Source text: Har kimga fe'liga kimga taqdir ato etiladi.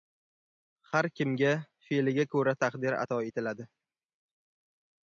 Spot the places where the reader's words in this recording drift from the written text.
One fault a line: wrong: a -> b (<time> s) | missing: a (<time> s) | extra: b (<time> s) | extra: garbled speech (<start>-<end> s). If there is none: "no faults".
wrong: kimga -> ko‘ra (2.3 s)